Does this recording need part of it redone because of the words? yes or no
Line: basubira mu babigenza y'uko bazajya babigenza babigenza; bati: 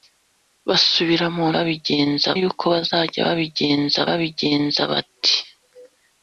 no